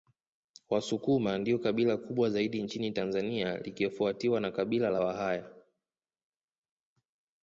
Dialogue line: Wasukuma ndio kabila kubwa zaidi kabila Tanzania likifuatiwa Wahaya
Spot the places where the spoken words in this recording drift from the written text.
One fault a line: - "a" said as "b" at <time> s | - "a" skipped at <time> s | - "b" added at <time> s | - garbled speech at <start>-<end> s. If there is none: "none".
- "kabila" said as "nchini" at 2.6 s
- "na Kabila la" added at 4.4 s